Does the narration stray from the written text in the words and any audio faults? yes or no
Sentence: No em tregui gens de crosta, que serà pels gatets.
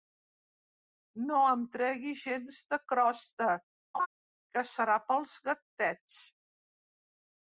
yes